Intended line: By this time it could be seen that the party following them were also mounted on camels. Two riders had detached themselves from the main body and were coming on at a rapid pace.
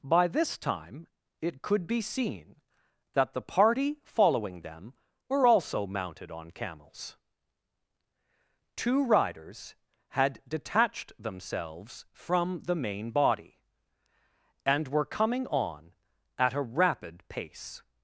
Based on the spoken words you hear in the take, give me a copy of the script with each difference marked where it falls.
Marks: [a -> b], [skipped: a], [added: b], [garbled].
By this time it could be seen that the party following them were also mounted on camels. Two riders had detached themselves from the main body and were coming on at a rapid pace.